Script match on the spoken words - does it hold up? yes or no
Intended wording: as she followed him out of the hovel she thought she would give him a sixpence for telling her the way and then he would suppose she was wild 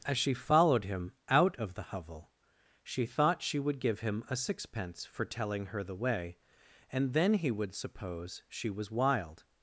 yes